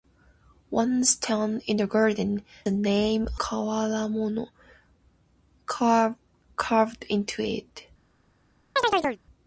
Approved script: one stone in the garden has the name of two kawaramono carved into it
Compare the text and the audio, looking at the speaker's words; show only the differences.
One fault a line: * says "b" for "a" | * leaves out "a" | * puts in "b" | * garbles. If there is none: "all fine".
* leaves out "has"
* leaves out "of two"